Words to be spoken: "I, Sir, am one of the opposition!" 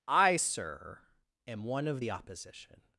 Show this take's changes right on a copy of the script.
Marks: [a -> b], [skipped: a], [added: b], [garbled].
"I, Sir, am one of the opposition!"